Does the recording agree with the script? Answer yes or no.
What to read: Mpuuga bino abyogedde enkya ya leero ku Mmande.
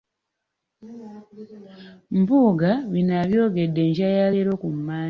yes